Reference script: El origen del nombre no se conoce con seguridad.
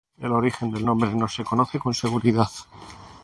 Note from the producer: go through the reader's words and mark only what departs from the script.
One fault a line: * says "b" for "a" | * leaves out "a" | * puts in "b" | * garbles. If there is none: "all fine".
all fine